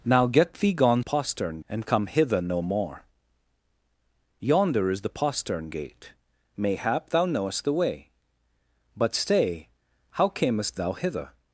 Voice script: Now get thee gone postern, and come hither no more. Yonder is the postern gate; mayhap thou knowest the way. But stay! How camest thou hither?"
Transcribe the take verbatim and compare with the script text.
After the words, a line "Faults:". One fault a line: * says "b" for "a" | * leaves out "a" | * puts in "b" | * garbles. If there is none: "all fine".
Now get thee gone postern, and come hither no more. Yonder is the postern gate; mayhap thou knowest the way. But stay! How camest thou hither?"
Faults:
all fine